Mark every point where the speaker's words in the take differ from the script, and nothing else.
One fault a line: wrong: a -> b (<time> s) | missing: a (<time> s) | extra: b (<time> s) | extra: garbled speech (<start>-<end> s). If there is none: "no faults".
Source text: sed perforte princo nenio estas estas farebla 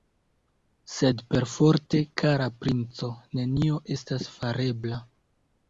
extra: kara (2.2 s)
missing: estas (4.3 s)